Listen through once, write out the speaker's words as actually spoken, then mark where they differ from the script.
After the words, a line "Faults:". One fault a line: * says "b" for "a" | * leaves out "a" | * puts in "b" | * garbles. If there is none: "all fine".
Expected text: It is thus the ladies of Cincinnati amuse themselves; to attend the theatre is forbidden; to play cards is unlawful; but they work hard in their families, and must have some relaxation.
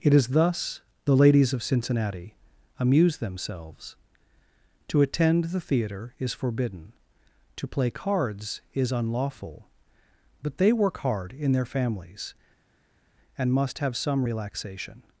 It is thus the ladies of Cincinnati amuse themselves; to attend the theatre is forbidden; to play cards is unlawful; but they work hard in their families, and must have some relaxation.
Faults:
all fine